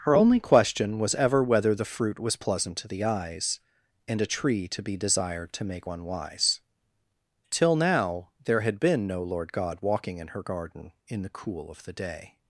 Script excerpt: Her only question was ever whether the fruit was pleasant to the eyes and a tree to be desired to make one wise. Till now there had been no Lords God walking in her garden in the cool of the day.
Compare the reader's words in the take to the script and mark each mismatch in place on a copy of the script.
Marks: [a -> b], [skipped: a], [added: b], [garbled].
Her only question was ever whether the fruit was pleasant to the eyes and a tree to be desired to make one wise. Till now there had been no [Lords -> Lord] God walking in her garden in the cool of the day.